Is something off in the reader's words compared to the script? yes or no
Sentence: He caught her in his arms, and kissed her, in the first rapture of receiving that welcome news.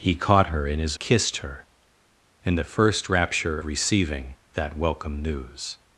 yes